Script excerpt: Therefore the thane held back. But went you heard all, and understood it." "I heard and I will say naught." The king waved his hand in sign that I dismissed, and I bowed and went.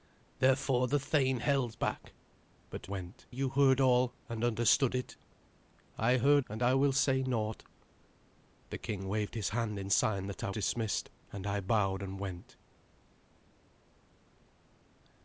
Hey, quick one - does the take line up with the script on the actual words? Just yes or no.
yes